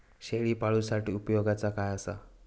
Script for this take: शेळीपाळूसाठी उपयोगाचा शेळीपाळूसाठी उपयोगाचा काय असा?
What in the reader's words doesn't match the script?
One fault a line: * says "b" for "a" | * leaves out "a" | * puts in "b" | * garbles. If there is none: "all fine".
* leaves out "शेळीपाळूसाठी उपयोगाचा"